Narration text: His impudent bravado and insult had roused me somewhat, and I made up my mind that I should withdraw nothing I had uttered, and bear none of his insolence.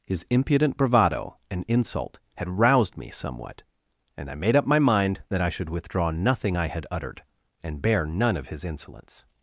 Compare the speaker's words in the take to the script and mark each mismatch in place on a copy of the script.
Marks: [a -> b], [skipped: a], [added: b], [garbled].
His impudent bravado and insult had roused me somewhat, and I made up my mind that I should withdraw nothing I had uttered, and bear none of his insolence.